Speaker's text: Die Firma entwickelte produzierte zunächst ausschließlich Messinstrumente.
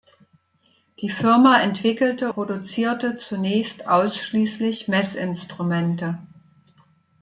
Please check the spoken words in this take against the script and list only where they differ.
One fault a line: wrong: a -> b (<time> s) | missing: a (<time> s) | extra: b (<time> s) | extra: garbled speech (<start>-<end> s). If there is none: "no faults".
no faults